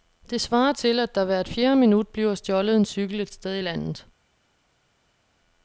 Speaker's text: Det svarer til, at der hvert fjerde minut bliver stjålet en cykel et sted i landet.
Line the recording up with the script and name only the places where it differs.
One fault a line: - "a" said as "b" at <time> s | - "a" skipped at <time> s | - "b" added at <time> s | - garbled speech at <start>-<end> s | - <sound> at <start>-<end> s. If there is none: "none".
none